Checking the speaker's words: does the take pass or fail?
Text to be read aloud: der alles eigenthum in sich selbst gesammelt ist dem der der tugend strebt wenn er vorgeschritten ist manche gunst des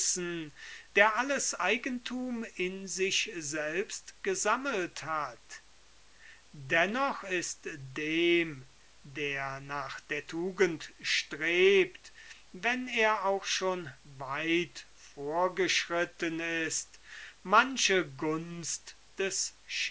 fail